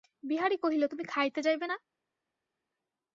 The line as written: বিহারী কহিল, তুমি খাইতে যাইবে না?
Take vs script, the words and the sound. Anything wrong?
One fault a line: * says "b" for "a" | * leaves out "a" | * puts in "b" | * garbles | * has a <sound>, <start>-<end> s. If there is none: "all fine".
all fine